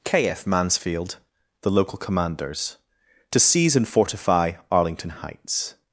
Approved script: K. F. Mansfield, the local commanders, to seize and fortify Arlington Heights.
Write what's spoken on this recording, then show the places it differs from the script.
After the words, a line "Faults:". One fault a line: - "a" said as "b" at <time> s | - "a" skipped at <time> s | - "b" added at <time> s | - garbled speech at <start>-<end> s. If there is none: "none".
K. F. Mansfield, the local commanders, to seize and fortify Arlington Heights.
Faults:
none